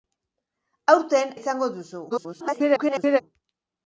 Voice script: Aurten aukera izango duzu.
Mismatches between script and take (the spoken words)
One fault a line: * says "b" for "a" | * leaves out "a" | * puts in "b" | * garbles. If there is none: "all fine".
* leaves out "aukera"
* garbles